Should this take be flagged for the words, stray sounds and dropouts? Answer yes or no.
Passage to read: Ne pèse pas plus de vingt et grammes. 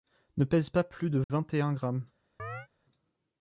yes